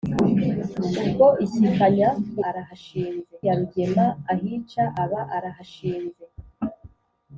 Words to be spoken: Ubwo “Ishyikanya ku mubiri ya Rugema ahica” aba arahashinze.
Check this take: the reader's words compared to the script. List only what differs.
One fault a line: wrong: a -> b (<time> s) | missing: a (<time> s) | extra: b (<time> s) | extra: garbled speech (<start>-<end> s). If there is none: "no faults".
wrong: mubiri -> arahashinze (2.5 s)